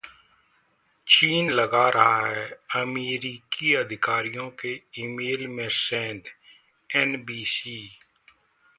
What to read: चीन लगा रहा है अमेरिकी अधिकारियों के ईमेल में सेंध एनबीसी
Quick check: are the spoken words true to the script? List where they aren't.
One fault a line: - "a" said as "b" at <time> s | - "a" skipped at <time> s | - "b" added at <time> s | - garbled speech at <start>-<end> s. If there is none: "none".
none